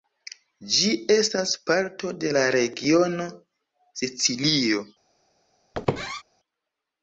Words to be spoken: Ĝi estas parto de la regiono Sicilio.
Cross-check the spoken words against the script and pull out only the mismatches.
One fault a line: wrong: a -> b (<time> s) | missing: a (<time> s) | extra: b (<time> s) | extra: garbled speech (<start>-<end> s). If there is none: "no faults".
no faults